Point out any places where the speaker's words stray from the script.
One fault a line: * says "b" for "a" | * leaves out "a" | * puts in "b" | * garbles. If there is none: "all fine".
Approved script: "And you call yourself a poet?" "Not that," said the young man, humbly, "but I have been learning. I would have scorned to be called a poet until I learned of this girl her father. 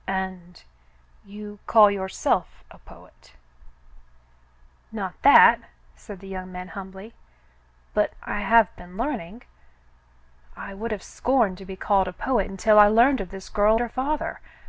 all fine